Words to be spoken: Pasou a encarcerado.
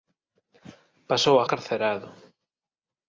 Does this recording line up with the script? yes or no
yes